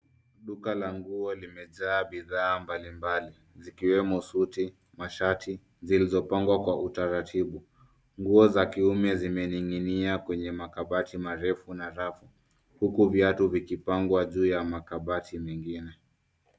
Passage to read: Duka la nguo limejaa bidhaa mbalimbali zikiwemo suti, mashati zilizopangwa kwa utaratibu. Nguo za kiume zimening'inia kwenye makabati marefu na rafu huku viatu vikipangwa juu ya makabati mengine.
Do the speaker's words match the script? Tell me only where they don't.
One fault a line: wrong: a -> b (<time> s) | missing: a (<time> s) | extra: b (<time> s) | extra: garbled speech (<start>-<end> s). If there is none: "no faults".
no faults